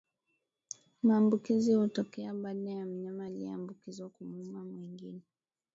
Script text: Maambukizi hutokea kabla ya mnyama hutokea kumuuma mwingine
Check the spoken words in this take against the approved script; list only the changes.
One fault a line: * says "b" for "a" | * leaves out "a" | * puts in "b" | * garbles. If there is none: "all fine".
* says "baada" for "kabla"
* says "aliyeambukizwa" for "hutokea"